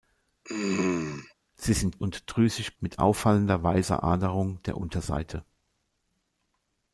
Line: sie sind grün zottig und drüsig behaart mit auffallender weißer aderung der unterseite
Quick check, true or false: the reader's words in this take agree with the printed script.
false